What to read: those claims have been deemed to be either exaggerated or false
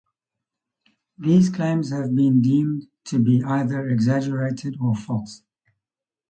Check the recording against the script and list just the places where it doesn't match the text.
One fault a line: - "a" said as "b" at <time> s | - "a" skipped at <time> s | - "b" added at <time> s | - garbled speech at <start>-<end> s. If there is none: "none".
- "those" said as "these" at 1.2 s